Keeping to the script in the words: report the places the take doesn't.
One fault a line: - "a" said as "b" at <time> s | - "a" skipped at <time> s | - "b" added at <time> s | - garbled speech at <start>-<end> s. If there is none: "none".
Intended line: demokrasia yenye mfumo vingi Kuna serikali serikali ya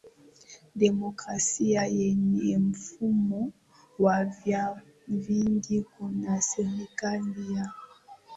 - "wa vyama" added at 4.0 s
- "serikali" skipped at 7.5 s